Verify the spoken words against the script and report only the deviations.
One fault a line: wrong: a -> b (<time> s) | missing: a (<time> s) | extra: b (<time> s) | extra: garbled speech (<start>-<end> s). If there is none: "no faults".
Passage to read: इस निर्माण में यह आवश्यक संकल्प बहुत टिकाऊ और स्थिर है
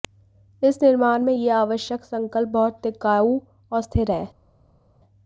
no faults